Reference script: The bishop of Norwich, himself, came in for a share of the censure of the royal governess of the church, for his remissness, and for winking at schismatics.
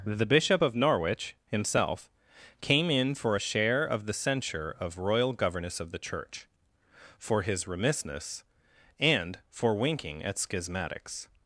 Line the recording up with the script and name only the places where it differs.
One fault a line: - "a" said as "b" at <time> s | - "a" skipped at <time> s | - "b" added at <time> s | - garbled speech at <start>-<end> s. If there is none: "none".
- "the" skipped at 5.0 s